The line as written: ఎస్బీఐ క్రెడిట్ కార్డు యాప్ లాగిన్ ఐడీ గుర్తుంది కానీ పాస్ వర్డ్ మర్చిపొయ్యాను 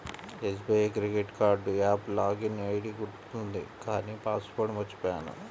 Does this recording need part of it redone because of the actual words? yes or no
no